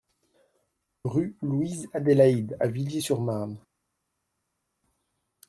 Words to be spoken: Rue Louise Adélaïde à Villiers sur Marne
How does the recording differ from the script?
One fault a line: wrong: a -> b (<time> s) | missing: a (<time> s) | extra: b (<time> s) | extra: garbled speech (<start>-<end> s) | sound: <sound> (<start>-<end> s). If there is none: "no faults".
no faults